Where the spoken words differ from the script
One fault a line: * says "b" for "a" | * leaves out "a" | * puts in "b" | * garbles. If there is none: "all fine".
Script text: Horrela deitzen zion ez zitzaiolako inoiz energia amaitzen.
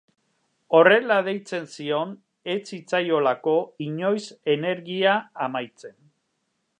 all fine